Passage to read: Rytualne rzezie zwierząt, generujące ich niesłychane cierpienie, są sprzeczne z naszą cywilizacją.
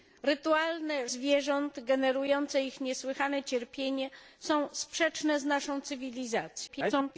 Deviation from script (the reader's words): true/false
true